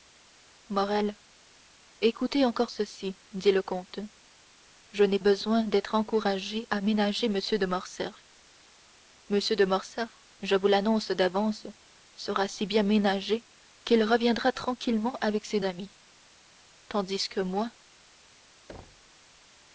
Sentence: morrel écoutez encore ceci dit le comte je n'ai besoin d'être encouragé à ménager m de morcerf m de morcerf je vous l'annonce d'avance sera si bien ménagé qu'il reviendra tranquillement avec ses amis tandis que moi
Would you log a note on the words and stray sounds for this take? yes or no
yes